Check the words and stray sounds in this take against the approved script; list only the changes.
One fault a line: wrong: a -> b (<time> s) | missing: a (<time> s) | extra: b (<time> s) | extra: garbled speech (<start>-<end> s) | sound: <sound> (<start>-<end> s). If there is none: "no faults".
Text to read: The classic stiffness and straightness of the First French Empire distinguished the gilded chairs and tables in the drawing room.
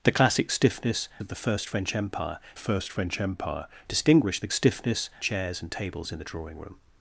missing: and straightness (1.1 s)
extra: First French Empire (2.6 s)
wrong: gilded -> stiffness (4.5 s)